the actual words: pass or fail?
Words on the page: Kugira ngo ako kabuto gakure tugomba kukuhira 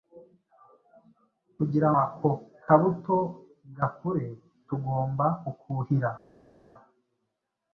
fail